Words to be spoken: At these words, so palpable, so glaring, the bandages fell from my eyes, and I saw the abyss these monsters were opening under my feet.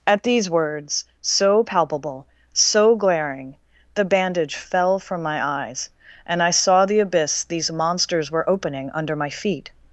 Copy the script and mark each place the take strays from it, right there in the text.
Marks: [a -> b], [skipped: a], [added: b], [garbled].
At these words, so palpable, so glaring, the [bandages -> bandage] fell from my eyes, and I saw the abyss these monsters were opening under my feet.